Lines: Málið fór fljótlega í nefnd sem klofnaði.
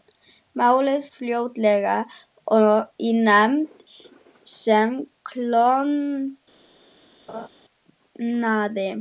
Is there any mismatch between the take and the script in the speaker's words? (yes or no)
yes